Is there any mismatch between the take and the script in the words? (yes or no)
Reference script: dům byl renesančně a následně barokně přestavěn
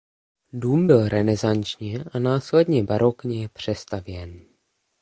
no